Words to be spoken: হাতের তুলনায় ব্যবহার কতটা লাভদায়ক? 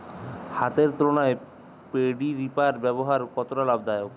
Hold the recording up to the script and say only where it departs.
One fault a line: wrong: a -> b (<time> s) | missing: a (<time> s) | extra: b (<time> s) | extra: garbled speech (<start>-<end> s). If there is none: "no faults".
extra: পেডি রিপার (1.9 s)